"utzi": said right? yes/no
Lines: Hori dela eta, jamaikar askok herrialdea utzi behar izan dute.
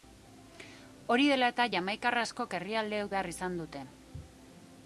no